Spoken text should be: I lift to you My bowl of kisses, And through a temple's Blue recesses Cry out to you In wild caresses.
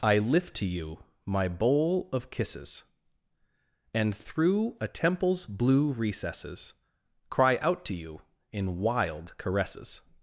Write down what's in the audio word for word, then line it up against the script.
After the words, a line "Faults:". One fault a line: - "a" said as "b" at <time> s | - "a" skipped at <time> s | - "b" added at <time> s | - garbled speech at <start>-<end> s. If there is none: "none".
I lift to you My bowl of kisses, And through a temple's Blue recesses Cry out to you In wild caresses.
Faults:
none